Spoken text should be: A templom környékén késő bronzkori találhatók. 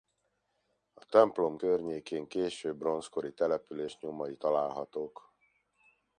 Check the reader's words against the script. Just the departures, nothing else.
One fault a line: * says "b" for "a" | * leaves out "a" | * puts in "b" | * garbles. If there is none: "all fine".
* puts in "település nyomai"